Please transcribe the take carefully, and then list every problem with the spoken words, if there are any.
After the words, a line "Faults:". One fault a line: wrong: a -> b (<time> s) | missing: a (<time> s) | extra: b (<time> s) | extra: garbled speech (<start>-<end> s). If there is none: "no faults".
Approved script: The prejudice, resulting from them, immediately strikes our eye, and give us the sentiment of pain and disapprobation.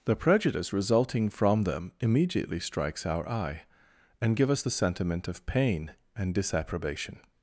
The prejudice, resulting from them, immediately strikes our eye, and give us the sentiment of pain and disapprobation.
Faults:
no faults